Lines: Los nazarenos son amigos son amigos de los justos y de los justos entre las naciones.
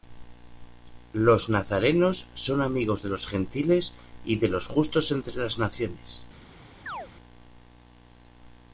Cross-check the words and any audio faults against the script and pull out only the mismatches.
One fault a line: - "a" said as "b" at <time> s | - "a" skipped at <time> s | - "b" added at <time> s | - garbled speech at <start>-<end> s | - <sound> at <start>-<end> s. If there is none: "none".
- "son amigos" skipped at 3.0 s
- "justos" said as "gentiles" at 3.3 s
- chirp at 6.9-7.1 s